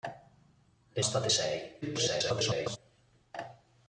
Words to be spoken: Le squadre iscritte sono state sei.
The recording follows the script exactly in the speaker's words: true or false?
false